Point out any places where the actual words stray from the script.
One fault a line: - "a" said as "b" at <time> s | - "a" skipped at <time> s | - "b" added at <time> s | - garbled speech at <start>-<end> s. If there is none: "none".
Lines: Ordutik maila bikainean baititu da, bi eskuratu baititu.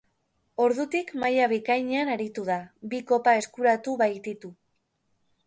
- "baititu" said as "aritu" at 2.1 s
- "kopa" added at 3.1 s